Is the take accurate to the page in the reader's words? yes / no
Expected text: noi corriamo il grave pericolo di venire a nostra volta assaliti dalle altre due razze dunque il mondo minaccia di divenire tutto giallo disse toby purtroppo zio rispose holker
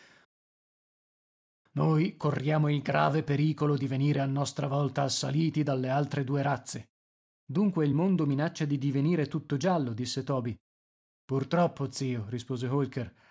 yes